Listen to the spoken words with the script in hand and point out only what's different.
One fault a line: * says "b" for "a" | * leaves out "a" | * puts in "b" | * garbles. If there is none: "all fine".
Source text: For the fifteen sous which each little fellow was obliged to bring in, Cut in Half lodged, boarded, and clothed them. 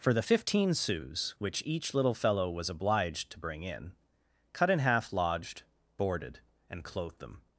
all fine